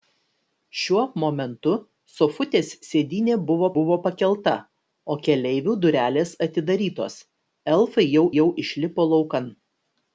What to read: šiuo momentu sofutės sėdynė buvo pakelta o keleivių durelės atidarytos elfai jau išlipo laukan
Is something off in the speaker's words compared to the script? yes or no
yes